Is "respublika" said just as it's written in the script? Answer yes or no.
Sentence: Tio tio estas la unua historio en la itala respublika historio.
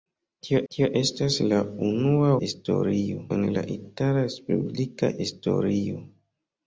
yes